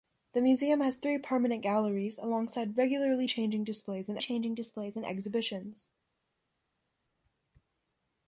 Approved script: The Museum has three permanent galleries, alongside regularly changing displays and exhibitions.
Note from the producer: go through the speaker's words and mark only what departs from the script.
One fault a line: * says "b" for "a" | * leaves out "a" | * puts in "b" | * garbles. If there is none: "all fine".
* puts in "changing displays and"